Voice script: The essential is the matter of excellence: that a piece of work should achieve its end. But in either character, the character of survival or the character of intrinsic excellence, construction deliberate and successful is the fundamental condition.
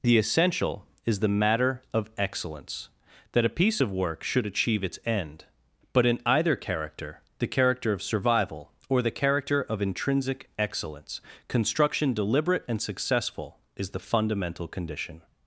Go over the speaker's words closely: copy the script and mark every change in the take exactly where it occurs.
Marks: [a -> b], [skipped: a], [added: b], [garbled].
The essential is the matter of excellence: that a piece of work should achieve its end. But in either character, the character of survival or the character of intrinsic excellence, construction deliberate and successful is the fundamental condition.